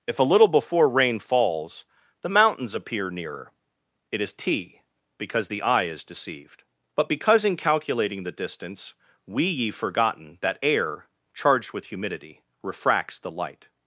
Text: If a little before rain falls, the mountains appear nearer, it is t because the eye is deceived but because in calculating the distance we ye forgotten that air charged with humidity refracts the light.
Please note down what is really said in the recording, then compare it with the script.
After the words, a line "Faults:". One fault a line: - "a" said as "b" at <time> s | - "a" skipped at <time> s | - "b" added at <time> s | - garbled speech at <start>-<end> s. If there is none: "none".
If a little before rain falls, the mountains appear nearer, it is t because the eye is deceived but because in calculating the distance we ye forgotten that air charged with humidity refracts the light.
Faults:
none